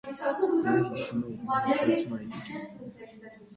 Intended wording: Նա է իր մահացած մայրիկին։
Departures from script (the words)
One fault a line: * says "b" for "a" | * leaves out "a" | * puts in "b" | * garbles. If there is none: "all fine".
* puts in "հիշում"